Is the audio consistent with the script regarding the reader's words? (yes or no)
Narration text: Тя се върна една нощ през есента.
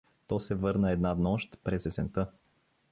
no